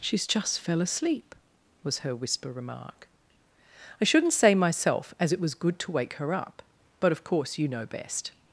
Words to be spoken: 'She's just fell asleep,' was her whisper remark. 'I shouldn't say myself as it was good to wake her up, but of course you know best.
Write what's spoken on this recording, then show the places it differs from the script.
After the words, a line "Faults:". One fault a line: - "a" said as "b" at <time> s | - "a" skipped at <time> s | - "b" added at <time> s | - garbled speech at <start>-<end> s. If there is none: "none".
'She's just fell asleep,' was her whisper remark. 'I shouldn't say myself as it was good to wake her up, but of course you know best.
Faults:
none